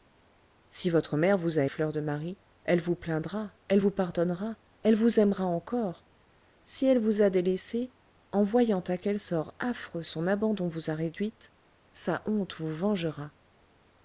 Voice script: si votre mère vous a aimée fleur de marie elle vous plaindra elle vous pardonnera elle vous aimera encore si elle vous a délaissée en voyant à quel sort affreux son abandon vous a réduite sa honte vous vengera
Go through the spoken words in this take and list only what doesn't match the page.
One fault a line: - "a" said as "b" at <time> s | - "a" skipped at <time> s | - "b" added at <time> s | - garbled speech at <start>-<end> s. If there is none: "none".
- "aimée" skipped at 1.6 s